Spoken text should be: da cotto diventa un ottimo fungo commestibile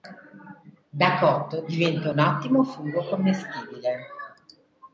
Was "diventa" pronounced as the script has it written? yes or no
yes